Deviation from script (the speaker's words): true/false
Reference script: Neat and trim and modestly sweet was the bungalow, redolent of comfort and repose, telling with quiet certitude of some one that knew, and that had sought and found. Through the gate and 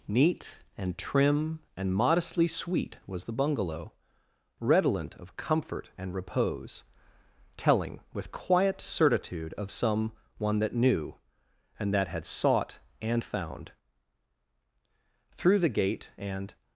false